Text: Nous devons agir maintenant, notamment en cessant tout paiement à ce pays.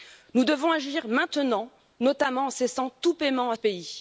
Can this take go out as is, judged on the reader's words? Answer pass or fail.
fail